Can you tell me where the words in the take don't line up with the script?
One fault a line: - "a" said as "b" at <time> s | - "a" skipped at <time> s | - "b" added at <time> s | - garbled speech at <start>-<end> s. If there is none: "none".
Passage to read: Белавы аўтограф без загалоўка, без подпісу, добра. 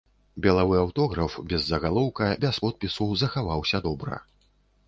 - "захаваўся" added at 3.2 s